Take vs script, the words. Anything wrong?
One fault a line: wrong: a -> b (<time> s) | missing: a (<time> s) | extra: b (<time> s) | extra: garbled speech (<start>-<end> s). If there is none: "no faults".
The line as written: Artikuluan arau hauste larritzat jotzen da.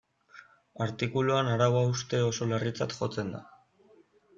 extra: oso (2.3 s)